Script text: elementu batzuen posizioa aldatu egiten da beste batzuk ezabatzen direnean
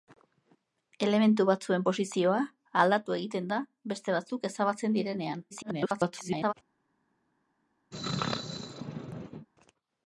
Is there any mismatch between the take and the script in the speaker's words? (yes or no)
yes